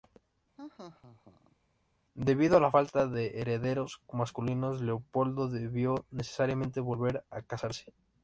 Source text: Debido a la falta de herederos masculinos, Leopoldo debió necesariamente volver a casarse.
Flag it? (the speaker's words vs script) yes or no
no